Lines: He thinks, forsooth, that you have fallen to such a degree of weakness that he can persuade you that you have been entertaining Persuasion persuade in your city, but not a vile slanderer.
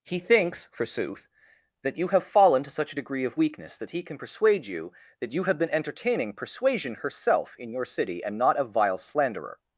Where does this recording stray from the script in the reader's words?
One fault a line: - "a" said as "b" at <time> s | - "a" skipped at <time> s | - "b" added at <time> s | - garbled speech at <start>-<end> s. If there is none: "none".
- "persuade" said as "herself" at 7.0 s
- "but" said as "and" at 8.2 s